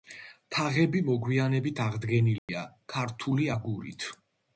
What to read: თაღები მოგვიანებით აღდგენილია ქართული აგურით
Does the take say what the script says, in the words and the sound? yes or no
no